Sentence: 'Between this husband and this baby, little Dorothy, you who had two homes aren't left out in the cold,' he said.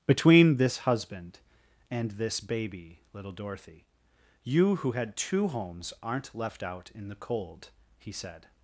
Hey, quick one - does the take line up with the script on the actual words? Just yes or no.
yes